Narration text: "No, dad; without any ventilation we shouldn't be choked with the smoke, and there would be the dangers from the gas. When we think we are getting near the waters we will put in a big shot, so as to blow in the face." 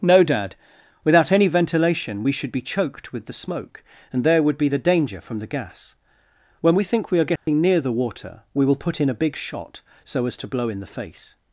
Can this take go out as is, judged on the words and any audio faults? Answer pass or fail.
fail